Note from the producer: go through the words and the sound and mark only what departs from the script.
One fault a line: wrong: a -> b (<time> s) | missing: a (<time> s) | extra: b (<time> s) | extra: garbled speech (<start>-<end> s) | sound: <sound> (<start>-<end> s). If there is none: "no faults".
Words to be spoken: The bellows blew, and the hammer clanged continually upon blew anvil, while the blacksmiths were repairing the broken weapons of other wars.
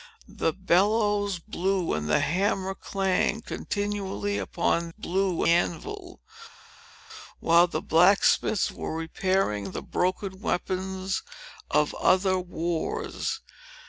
no faults